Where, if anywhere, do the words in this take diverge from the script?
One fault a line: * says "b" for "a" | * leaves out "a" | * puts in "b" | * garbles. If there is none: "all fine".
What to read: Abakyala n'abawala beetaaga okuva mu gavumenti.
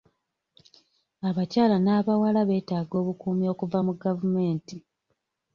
* puts in "obukuumi"